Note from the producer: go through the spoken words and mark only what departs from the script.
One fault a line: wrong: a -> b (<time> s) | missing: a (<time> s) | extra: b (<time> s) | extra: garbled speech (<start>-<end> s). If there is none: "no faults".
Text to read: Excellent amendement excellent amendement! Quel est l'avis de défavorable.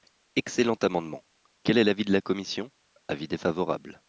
missing: excellent amendement (1.2 s)
extra: la commission Avis (2.1 s)